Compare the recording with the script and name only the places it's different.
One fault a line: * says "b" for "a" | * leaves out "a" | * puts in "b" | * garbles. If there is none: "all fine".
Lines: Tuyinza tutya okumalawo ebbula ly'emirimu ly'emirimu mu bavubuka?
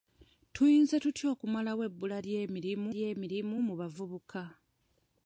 all fine